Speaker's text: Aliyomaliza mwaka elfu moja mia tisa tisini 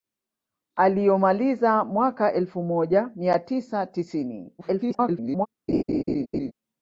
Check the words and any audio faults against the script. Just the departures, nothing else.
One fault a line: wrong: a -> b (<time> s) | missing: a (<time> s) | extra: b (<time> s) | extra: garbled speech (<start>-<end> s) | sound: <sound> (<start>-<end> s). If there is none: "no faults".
extra: garbled speech (4.6-5.5 s)
sound: laugh (5.7-6.5 s)